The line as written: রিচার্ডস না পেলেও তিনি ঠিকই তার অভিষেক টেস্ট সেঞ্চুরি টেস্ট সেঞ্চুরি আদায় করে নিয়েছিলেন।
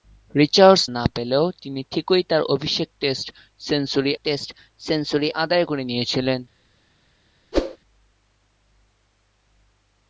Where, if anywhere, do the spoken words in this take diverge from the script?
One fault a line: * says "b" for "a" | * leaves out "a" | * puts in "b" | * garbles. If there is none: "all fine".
all fine